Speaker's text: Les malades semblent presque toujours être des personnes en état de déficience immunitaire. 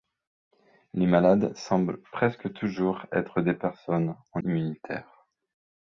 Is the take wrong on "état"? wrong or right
wrong